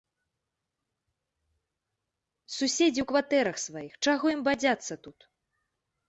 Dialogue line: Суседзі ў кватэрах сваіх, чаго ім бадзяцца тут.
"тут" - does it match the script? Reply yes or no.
yes